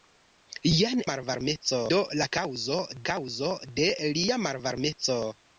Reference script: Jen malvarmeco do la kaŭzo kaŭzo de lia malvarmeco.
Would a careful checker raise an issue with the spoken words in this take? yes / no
no